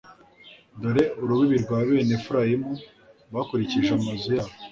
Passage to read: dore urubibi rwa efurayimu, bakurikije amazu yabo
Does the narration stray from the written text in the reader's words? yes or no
yes